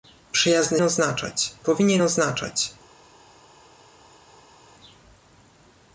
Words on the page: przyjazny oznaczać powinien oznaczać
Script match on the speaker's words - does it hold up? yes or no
yes